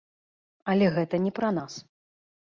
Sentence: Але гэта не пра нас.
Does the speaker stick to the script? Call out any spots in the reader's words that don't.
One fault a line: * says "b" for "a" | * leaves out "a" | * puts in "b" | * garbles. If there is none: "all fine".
all fine